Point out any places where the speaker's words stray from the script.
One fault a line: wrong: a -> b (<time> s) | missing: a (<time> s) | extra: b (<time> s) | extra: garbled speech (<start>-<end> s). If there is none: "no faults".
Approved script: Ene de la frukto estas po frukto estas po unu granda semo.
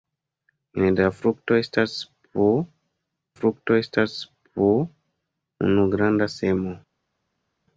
no faults